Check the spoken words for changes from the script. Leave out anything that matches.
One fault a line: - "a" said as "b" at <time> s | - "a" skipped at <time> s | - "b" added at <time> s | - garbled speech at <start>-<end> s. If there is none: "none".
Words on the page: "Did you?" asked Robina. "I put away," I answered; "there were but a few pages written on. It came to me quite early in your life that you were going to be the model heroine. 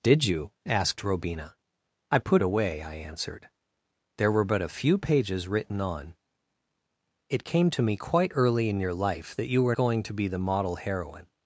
none